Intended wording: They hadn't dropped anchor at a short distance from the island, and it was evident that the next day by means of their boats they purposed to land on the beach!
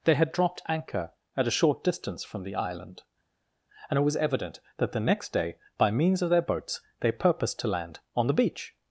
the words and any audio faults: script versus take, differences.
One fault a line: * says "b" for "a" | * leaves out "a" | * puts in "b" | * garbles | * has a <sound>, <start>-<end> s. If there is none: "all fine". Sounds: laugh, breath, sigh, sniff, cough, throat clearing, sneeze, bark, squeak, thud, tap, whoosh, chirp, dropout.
* says "had" for "hadn't"